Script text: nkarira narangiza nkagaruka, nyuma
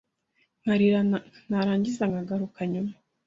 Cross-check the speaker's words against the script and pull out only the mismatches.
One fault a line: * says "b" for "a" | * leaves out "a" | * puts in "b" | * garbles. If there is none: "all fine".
all fine